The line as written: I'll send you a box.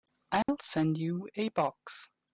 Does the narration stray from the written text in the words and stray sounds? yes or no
yes